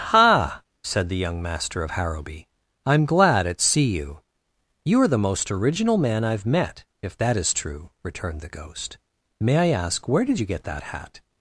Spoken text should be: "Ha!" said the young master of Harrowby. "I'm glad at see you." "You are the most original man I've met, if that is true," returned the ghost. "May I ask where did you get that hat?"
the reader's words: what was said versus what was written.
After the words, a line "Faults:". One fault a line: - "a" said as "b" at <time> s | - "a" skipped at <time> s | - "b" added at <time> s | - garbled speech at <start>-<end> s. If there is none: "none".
"Ha!" said the young master of Harrowby. "I'm glad at see you." "You are the most original man I've met, if that is true," returned the ghost. "May I ask where did you get that hat?"
Faults:
none